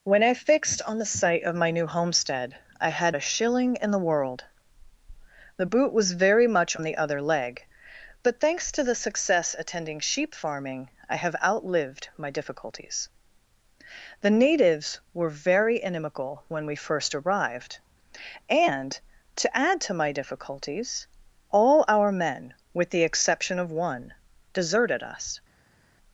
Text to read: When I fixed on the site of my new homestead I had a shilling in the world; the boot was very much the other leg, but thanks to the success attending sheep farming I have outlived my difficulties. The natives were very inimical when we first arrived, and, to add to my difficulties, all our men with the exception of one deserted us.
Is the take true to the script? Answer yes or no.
yes